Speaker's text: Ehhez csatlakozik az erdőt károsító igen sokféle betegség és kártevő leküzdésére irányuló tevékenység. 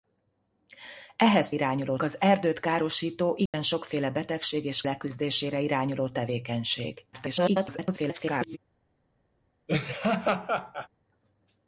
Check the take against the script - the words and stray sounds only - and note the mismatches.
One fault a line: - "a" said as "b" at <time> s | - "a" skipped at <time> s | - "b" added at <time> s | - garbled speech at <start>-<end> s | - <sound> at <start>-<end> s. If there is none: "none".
- "csatlakozik" said as "irányuló" at 1.5 s
- dropout at 3.5-3.5 s
- "kártevő" skipped at 4.8 s
- garbled speech at 7.1-8.6 s
- laugh at 9.7-10.9 s